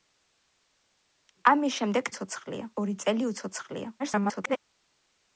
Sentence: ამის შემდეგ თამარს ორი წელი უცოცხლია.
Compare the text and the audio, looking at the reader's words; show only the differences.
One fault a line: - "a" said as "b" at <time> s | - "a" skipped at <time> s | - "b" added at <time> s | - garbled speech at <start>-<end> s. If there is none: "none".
- "თამარს" said as "უცოცხლია" at 2.1 s
- garbled speech at 4.0-4.6 s